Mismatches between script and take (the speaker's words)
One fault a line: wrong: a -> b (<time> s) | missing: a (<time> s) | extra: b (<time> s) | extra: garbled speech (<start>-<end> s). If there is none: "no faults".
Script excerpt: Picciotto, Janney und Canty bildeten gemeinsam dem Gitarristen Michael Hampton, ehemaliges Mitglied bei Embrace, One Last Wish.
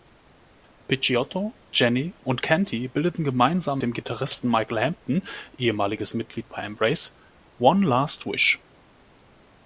no faults